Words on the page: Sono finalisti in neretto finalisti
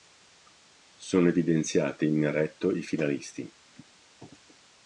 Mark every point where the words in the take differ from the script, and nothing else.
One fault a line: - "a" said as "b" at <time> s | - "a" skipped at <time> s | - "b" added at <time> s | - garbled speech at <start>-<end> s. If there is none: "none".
- "finalisti" said as "evidenziati" at 1.3 s
- "i" added at 2.7 s